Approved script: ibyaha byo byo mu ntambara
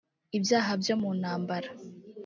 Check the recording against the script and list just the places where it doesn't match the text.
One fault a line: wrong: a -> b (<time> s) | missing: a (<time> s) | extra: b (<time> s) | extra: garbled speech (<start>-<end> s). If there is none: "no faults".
missing: byo (0.9 s)